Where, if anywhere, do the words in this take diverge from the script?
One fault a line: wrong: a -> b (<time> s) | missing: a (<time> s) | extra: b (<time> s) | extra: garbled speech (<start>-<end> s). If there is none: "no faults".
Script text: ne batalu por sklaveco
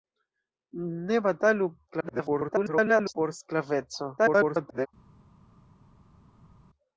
extra: garbled speech (1.9-3.1 s)
extra: garbled speech (4.2-4.9 s)